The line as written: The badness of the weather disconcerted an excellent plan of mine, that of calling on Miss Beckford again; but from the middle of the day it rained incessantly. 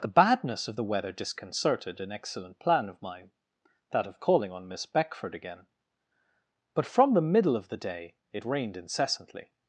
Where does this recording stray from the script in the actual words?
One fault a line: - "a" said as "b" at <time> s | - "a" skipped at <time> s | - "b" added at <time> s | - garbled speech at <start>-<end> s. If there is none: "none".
none